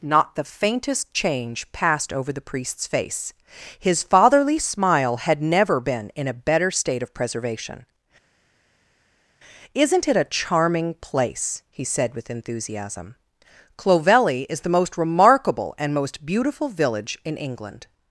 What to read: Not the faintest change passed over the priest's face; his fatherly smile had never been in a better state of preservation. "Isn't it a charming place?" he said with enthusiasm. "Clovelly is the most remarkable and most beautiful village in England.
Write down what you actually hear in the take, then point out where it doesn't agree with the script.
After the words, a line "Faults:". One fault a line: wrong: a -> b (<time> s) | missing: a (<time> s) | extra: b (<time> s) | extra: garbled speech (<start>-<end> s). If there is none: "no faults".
Not the faintest change passed over the priest's face; his fatherly smile had never been in a better state of preservation. "Isn't it a charming place?" he said with enthusiasm. "Clovelly is the most remarkable and most beautiful village in England.
Faults:
no faults